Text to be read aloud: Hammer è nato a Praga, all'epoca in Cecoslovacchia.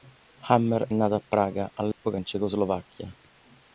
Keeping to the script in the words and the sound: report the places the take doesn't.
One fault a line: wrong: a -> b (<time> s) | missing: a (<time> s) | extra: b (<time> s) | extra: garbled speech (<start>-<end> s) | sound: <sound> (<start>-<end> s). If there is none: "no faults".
sound: dropout (1.9-2.0 s)